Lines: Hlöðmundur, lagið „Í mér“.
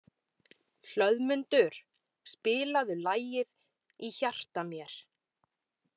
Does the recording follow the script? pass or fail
fail